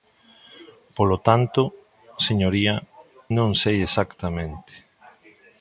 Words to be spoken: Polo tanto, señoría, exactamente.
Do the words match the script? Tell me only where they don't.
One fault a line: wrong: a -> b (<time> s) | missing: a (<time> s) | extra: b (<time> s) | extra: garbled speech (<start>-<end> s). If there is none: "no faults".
extra: non sei (3.4 s)